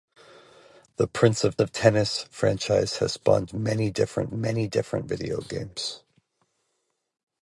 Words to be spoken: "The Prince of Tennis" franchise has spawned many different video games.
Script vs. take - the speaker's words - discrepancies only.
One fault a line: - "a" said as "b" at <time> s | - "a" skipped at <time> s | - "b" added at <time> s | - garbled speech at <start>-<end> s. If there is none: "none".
- "of" added at 1.6 s
- "many different" added at 4.3 s